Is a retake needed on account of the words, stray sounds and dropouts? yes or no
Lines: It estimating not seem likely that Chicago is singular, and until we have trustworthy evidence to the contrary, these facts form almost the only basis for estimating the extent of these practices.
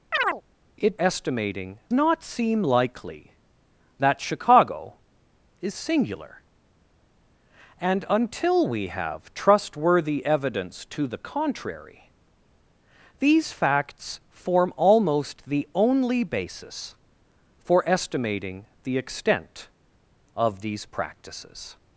yes